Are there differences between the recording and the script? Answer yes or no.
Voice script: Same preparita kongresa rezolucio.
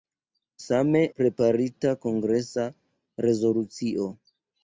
no